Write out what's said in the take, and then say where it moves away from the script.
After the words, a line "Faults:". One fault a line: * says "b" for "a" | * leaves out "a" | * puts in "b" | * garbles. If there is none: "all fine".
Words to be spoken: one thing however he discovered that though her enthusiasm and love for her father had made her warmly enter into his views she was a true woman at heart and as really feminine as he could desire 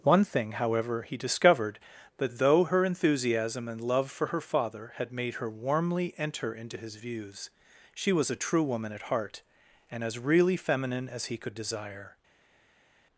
one thing however he discovered that though her enthusiasm and love for her father had made her warmly enter into his views she was a true woman at heart and as really feminine as he could desire
Faults:
all fine